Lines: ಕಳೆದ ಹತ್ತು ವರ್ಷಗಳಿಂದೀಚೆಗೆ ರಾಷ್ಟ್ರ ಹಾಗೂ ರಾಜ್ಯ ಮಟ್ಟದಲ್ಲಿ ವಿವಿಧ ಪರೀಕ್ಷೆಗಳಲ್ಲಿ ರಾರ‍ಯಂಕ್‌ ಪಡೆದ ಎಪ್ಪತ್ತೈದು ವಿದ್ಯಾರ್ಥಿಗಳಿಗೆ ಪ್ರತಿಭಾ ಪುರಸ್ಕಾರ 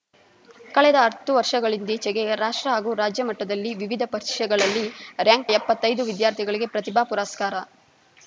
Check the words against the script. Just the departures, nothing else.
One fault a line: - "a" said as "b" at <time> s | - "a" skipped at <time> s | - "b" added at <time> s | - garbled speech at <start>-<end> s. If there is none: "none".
- "ಪಡೆದ" skipped at 5.5 s